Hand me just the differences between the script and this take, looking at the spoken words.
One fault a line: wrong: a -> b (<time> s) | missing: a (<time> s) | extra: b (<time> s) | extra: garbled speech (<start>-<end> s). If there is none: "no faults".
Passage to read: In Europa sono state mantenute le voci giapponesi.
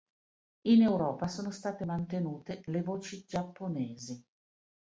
no faults